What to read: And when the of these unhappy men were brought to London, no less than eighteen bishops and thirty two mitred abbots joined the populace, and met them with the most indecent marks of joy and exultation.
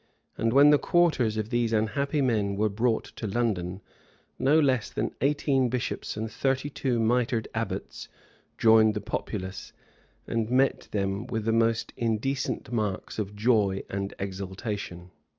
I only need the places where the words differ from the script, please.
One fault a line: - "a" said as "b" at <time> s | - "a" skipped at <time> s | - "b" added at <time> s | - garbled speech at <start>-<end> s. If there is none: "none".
- "quarters" added at 0.8 s